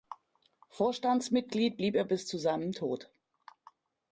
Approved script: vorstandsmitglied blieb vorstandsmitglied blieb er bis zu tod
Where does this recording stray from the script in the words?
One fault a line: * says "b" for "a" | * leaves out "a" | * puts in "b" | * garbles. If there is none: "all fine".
* leaves out "vorstandsmitglied blieb"
* puts in "seinem"